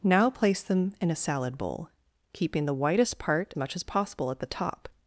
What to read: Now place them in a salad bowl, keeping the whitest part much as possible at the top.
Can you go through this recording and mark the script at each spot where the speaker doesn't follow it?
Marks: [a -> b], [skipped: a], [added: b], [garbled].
Now place them in a salad bowl, keeping the whitest part much as possible at the top.